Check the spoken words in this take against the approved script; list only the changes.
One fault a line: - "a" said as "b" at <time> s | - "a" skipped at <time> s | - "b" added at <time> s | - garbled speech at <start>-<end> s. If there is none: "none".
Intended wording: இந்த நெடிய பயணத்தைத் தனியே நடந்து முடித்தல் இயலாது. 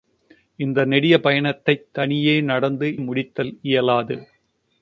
none